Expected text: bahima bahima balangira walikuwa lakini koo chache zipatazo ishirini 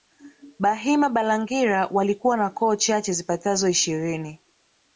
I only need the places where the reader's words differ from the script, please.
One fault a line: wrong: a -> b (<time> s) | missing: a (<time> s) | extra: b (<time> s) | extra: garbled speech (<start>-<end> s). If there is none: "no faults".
missing: bahima (1.1 s)
wrong: lakini -> na (2.4 s)